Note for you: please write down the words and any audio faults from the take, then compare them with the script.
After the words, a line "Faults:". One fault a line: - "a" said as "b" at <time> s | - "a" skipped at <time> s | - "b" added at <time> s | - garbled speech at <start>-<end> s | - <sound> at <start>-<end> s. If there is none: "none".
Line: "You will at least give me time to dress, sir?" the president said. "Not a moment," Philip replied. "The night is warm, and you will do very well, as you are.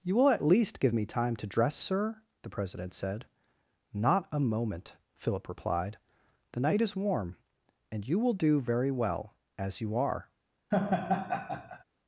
"You will at least give me time to dress, sir?" the president said. "Not a moment," Philip replied. "The night is warm, and you will do very well, as you are.
Faults:
- laugh at 10.7-11.8 s